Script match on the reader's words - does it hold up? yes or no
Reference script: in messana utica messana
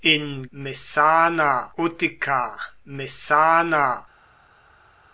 yes